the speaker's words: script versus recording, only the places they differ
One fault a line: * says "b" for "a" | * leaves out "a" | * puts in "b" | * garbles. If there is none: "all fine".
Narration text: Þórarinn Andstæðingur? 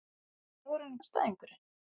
all fine